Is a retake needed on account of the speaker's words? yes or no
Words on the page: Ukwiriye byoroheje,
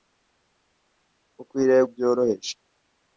no